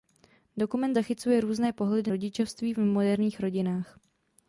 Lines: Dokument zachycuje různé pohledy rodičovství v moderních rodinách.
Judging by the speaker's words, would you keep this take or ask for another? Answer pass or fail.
pass